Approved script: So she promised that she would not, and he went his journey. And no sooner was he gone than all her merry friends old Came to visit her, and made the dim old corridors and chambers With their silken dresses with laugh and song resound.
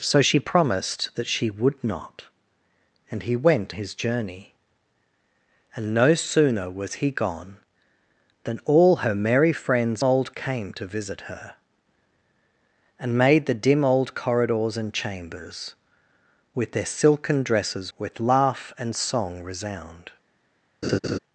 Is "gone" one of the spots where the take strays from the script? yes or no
no